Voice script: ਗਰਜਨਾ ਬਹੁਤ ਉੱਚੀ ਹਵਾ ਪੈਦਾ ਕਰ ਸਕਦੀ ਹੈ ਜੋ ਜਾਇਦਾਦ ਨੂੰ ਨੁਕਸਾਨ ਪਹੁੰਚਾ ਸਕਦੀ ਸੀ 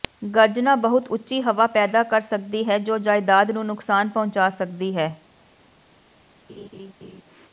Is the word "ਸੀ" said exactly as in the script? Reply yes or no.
no